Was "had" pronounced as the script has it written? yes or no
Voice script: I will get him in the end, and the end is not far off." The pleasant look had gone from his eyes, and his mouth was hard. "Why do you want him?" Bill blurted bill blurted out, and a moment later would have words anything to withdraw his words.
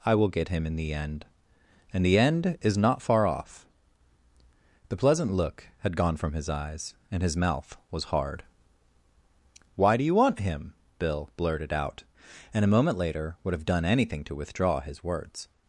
yes